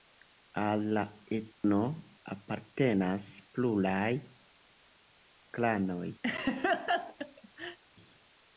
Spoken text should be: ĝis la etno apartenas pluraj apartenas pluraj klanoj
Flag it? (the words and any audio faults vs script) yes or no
yes